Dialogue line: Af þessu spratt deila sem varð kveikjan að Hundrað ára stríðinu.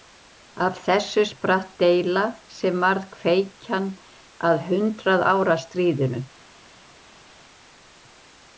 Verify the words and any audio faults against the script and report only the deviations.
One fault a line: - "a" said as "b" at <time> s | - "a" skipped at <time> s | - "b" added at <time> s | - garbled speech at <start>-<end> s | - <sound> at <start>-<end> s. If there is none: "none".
none